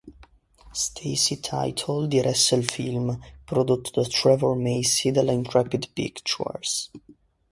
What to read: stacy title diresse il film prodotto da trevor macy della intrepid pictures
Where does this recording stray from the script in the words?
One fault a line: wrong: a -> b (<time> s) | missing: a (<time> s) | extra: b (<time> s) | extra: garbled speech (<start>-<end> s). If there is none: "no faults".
no faults